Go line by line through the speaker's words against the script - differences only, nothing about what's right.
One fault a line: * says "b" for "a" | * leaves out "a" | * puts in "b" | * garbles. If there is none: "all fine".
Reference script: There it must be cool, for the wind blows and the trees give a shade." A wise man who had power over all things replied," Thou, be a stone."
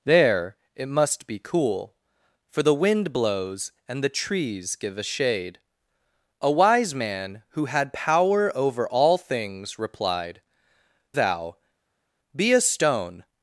all fine